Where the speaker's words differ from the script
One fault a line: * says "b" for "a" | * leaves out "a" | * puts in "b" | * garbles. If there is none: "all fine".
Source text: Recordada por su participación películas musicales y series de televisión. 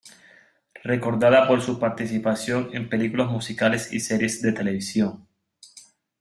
* puts in "en"